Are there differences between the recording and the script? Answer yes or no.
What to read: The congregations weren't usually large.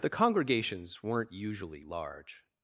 no